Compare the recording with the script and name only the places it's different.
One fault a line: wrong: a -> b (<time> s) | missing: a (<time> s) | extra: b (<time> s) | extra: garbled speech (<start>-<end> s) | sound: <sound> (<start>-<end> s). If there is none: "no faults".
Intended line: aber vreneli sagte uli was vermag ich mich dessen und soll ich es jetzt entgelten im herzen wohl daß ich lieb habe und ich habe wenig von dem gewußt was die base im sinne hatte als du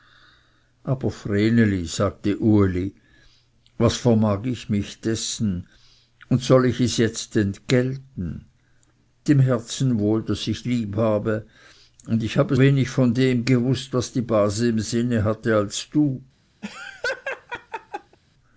sound: laugh (16.6-18.2 s)